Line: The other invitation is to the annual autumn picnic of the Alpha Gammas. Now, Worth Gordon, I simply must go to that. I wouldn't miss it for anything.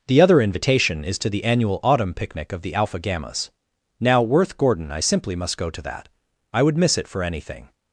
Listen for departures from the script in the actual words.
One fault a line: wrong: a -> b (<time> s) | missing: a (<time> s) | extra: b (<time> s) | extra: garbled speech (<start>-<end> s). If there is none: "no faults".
wrong: wouldn't -> would (6.6 s)